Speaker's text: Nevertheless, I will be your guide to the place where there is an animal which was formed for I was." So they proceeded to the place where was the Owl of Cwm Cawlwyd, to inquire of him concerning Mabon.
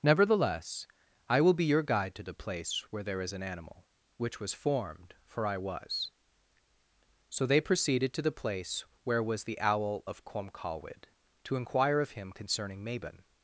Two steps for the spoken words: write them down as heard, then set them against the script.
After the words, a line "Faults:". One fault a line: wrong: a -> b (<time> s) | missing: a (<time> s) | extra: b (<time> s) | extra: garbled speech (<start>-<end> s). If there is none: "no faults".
Nevertheless, I will be your guide to the place where there is an animal which was formed for I was." So they proceeded to the place where was the Owl of Cwm Cawlwyd, to inquire of him concerning Mabon.
Faults:
no faults